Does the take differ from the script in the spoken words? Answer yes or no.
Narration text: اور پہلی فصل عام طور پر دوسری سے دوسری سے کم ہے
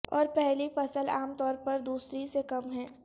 yes